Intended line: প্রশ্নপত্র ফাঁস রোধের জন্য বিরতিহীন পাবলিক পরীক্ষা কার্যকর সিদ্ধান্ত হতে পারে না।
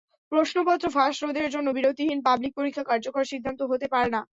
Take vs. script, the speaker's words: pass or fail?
pass